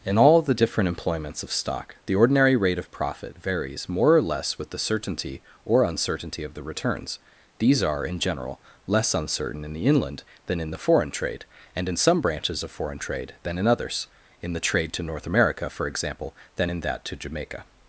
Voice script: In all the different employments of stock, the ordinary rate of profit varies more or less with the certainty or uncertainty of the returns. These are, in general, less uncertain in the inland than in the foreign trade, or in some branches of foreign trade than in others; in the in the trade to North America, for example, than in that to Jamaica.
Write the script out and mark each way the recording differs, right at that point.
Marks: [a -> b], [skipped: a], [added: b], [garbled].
In all the different employments of stock, the ordinary rate of profit varies more or less with the certainty or uncertainty of the returns. These are, in general, less uncertain in the inland than in the foreign trade, [or -> and] in some branches of foreign trade than in others; in the [skipped: in the] trade to North America, for example, than in that to Jamaica.